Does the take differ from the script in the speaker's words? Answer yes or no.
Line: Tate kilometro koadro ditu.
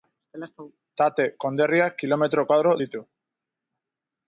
yes